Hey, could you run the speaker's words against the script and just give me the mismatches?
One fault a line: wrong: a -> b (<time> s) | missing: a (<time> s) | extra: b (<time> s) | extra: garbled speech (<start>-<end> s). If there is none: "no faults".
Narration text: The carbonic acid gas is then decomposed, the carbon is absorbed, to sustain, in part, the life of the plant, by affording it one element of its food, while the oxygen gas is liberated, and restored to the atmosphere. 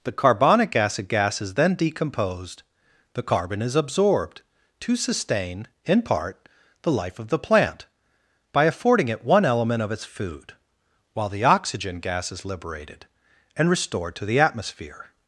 no faults